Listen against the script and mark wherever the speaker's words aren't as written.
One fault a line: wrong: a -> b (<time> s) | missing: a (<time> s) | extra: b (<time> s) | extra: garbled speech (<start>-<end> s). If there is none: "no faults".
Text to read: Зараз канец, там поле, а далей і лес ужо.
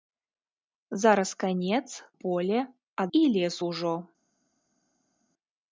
missing: там (2.0 s)
missing: далей (3.1 s)